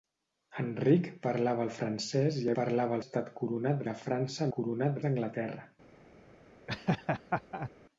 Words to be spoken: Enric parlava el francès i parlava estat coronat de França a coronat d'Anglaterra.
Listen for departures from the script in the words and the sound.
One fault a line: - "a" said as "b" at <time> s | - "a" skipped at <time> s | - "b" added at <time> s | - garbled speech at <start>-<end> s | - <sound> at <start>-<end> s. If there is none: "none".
- laugh at 6.7-7.7 s